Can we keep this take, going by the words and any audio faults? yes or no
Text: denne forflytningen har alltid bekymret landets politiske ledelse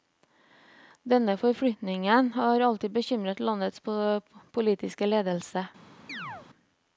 no